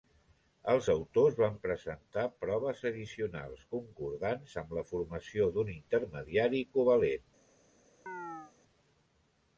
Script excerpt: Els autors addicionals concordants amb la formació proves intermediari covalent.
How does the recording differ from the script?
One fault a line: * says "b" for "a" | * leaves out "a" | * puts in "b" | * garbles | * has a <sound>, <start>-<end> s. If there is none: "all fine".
* puts in "van presentar proves"
* says "d'un" for "proves"
* has a chirp, 8.1-8.5 s